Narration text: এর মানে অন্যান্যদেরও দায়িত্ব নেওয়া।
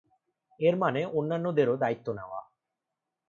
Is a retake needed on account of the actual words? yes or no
no